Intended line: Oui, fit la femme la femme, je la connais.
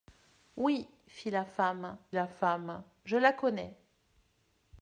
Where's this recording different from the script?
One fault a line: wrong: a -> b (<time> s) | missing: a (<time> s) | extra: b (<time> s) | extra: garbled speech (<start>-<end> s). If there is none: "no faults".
no faults